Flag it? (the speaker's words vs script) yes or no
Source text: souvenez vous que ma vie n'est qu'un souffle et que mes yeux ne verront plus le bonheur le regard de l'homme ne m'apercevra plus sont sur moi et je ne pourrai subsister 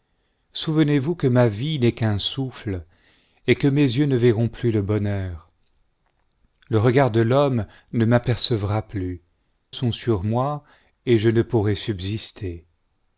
no